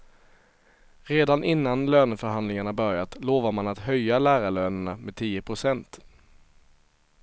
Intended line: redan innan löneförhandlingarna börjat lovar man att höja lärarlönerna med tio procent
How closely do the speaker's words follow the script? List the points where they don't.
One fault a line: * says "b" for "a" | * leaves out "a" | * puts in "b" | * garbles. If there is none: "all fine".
all fine